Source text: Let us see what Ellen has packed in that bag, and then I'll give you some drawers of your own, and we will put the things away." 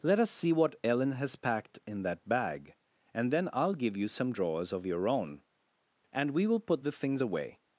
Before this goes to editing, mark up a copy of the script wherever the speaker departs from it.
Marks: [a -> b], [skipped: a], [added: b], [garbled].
Let us see what Ellen has packed in that bag, and then I'll give you some drawers of your own, and we will put the things away."